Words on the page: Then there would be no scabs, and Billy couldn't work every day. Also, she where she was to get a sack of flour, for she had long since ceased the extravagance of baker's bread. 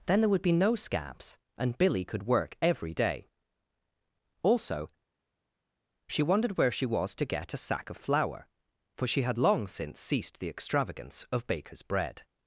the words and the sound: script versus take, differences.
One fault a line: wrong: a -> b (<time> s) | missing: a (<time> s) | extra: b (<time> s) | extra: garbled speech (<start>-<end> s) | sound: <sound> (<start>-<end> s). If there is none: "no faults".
wrong: couldn't -> could (2.0 s)
extra: wondered (6.2 s)